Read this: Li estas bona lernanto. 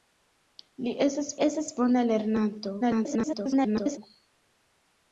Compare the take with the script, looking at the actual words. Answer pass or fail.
fail